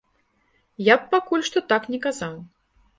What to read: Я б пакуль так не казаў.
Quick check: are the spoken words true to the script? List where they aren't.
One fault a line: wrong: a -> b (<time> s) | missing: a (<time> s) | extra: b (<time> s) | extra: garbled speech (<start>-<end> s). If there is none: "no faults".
extra: што (1.5 s)